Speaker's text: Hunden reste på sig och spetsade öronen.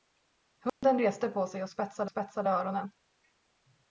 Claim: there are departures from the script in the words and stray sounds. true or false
true